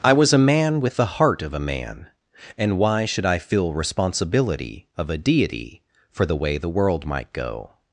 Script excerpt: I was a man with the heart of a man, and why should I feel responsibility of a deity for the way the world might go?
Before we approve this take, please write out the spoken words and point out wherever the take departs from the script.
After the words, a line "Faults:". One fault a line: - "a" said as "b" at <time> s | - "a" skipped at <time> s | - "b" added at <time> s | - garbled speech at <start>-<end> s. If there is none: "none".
I was a man with the heart of a man, and why should I feel responsibility of a deity for the way the world might go?
Faults:
none